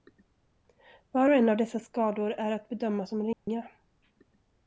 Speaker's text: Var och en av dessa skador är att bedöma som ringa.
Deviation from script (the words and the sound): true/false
true